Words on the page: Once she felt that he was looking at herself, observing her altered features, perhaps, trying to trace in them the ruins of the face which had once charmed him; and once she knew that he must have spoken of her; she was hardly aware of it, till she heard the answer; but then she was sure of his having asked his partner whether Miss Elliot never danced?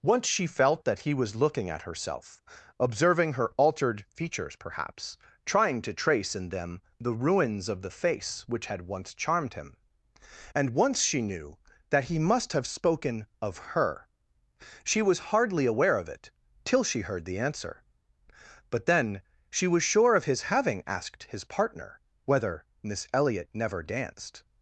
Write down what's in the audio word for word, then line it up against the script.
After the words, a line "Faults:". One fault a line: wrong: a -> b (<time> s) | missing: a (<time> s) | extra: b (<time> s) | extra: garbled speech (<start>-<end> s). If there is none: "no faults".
Once she felt that he was looking at herself, observing her altered features, perhaps, trying to trace in them the ruins of the face which had once charmed him; and once she knew that he must have spoken of her; she was hardly aware of it, till she heard the answer; but then she was sure of his having asked his partner whether Miss Elliot never danced?
Faults:
no faults